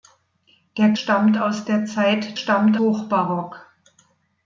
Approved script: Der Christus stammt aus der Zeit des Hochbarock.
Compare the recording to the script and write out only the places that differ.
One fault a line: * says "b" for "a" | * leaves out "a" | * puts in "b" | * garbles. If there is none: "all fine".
* leaves out "Christus"
* says "stammt" for "des"